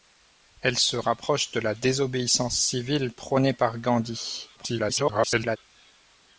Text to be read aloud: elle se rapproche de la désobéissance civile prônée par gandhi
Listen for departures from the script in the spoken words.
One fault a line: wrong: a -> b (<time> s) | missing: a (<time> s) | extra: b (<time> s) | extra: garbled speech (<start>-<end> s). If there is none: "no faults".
extra: garbled speech (4.6-5.6 s)